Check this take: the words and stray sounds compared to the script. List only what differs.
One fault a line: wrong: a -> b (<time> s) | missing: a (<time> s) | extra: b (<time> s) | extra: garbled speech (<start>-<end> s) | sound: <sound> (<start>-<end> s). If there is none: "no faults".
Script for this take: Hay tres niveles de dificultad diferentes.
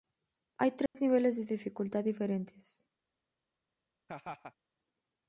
sound: dropout (0.9-0.9 s)
sound: laugh (4.1-4.5 s)